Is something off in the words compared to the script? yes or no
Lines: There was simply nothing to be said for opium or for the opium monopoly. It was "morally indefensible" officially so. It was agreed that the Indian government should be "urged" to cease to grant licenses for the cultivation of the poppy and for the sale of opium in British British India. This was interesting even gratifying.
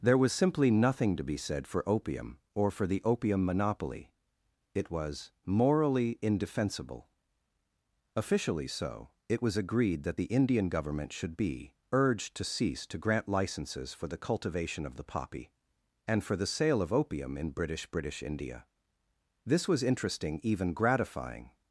no